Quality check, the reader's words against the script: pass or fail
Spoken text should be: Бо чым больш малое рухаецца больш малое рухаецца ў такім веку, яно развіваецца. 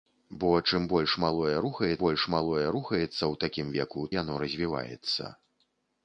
pass